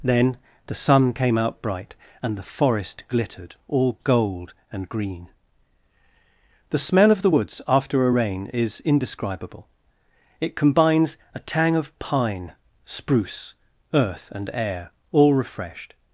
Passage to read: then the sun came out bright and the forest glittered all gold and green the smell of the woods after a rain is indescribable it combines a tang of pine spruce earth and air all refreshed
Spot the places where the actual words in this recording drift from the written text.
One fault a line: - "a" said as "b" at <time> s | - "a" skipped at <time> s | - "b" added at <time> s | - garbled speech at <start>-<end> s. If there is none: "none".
none